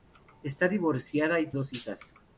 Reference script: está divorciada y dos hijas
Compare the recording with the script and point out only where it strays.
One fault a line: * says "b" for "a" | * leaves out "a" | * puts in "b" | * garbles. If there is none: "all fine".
all fine